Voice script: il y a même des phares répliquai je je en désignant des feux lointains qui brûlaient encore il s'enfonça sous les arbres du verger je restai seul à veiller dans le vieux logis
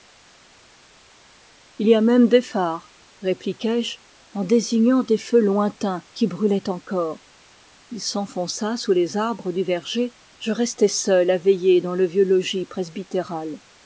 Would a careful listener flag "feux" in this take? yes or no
no